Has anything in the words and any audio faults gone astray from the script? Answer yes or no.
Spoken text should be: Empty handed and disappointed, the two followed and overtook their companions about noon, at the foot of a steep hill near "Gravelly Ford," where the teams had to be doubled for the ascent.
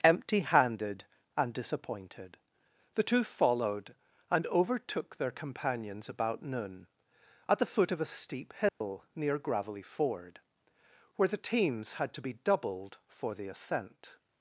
yes